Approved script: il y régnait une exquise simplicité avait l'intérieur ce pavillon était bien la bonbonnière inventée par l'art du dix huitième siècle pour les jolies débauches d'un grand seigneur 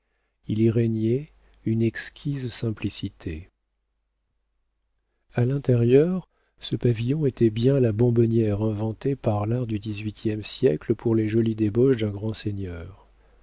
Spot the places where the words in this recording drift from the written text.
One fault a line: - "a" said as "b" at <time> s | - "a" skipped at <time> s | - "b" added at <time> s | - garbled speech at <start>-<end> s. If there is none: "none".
- "avait" said as "a" at 5.3 s